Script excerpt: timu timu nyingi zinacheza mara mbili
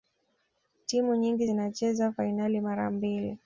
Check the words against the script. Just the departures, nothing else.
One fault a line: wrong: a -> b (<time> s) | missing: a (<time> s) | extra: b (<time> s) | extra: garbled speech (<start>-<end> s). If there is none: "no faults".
missing: timu (1.1 s)
extra: fainali (2.1 s)